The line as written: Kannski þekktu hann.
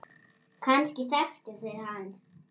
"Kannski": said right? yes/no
yes